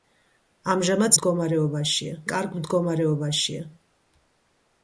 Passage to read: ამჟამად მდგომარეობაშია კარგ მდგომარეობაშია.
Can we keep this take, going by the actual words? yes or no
yes